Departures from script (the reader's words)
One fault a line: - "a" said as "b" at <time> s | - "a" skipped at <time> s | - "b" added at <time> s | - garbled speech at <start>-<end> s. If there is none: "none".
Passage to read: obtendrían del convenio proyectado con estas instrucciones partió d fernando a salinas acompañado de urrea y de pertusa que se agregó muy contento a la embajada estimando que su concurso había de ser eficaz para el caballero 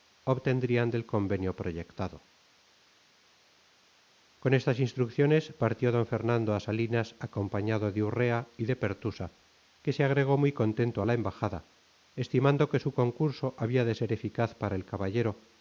none